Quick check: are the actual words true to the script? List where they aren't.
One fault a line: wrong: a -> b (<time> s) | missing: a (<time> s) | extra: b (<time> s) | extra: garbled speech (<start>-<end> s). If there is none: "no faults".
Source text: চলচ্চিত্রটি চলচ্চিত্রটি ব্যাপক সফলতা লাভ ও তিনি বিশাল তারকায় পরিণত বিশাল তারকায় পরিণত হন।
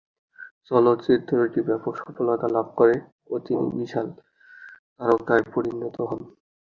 missing: চলচ্চিত্রটি (1.6 s)
extra: করে (2.8 s)
missing: বিশাল তারকায় পরিণত (6.0 s)